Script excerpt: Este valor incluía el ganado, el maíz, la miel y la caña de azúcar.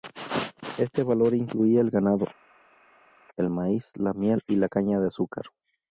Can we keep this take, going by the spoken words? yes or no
yes